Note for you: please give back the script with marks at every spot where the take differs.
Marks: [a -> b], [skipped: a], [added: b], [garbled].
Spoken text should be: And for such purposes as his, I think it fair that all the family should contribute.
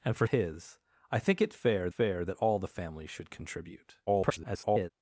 And for [skipped: such purposes as] his, I think it fair [added: fair] that all the family should contribute. [garbled]